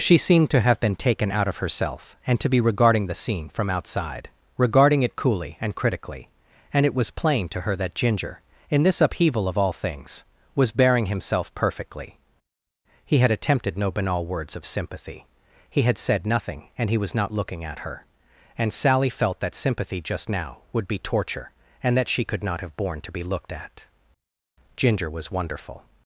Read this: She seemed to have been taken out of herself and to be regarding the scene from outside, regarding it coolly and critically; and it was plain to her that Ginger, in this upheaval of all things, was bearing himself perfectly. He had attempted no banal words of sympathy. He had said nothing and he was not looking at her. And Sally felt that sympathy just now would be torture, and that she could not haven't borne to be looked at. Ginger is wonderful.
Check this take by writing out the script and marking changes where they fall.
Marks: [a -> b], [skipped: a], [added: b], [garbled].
She seemed to have been taken out of herself and to be regarding the scene from outside, regarding it coolly and critically; and it was plain to her that Ginger, in this upheaval of all things, was bearing himself perfectly. He had attempted no banal words of sympathy. He had said nothing and he was not looking at her. And Sally felt that sympathy just now would be torture, and that she could not [haven't -> have] borne to be looked at. Ginger [is -> was] wonderful.